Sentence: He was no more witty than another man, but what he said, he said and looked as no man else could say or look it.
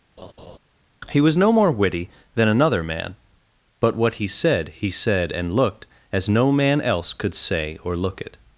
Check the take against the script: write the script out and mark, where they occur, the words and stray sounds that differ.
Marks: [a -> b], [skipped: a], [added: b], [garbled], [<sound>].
[laugh] He was no more witty than another man, but what he said, he said and looked as no man else could say or look it.